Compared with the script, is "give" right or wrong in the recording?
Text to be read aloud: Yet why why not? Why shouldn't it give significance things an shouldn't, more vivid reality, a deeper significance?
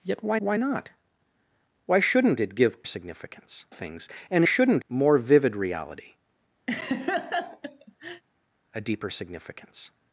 right